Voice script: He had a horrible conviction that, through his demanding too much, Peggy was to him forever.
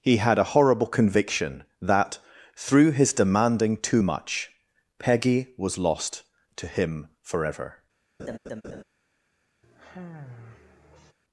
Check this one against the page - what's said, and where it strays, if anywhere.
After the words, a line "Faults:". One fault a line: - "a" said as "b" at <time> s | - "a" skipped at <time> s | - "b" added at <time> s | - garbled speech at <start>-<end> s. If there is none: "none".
He had a horrible conviction that, through his demanding too much, Peggy was lost to him forever.
Faults:
- "lost" added at 5.8 s